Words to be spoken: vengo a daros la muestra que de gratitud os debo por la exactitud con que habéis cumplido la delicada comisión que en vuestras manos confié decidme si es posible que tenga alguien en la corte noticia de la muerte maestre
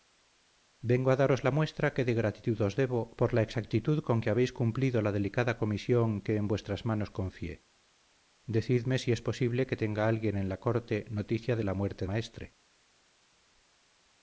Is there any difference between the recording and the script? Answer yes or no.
no